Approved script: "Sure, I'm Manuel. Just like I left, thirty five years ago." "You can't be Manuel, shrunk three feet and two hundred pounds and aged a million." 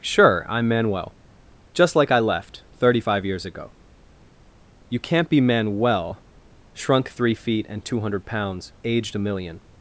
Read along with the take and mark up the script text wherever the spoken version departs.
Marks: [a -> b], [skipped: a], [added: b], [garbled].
"Sure, I'm Manuel. Just like I left, thirty five years ago." "You can't be Manuel, shrunk three feet and two hundred pounds [skipped: and] aged a million."